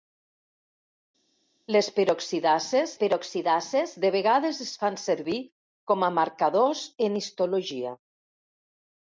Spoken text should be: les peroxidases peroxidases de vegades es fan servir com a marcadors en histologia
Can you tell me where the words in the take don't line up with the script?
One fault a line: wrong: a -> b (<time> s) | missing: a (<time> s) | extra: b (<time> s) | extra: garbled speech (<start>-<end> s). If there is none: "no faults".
no faults